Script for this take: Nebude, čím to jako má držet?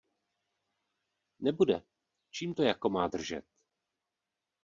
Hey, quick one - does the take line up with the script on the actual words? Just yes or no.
yes